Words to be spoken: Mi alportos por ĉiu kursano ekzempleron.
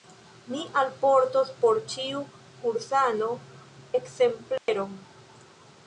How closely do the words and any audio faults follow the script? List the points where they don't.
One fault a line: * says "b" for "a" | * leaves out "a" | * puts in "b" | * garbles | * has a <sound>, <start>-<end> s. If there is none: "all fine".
* has a dropout, 4.6-4.7 s